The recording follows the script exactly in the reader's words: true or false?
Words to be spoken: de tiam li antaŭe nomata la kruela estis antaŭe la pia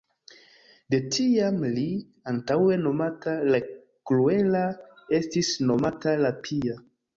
false